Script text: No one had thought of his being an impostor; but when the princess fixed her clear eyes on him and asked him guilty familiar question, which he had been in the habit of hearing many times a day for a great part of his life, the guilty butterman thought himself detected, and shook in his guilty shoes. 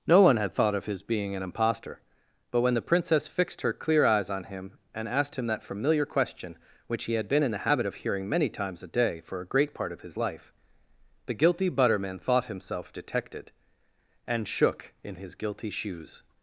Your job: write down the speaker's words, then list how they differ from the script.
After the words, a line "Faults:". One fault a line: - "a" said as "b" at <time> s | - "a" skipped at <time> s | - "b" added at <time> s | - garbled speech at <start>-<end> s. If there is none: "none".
No one had thought of his being an impostor; but when the princess fixed her clear eyes on him and asked him that familiar question, which he had been in the habit of hearing many times a day for a great part of his life, the guilty butterman thought himself detected, and shook in his guilty shoes.
Faults:
- "guilty" said as "that" at 5.5 s